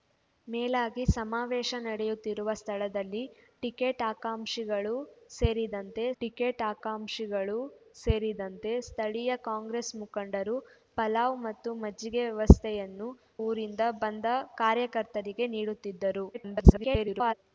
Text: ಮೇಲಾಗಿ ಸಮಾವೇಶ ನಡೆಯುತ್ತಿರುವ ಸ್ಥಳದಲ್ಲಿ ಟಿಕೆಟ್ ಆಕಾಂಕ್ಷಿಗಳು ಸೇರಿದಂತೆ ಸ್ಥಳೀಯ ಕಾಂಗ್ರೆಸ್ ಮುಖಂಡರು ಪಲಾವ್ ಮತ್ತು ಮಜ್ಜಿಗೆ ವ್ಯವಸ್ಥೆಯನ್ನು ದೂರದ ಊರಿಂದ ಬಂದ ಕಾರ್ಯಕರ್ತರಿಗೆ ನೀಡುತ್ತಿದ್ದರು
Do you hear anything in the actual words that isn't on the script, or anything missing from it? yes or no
yes